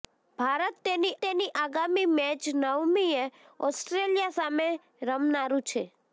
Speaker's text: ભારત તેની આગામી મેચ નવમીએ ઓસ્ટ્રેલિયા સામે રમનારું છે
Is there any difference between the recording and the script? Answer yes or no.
yes